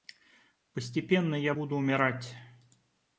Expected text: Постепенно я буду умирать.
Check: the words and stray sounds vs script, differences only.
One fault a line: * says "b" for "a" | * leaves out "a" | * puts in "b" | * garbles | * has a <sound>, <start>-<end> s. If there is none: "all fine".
all fine